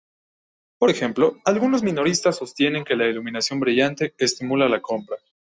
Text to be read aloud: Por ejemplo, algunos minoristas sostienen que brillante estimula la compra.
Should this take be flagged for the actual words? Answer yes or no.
yes